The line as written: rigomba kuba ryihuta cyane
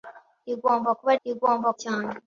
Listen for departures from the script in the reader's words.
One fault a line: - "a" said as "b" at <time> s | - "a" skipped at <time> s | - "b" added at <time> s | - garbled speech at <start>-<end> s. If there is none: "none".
- "ryihuta" said as "rigomba" at 1.2 s